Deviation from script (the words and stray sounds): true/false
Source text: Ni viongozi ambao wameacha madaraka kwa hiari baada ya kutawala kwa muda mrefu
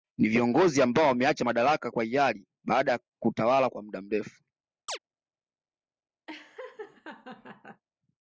true